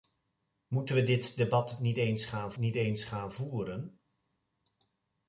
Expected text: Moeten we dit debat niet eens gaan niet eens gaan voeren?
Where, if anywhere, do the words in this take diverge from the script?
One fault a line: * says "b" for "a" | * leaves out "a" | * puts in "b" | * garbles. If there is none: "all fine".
all fine